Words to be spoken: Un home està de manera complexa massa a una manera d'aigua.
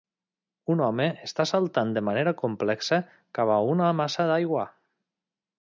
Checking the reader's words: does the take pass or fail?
fail